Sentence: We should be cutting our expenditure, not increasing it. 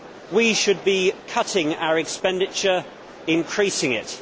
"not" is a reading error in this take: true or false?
true